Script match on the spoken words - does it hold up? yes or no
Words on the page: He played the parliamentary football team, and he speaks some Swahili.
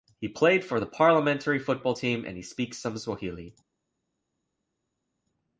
no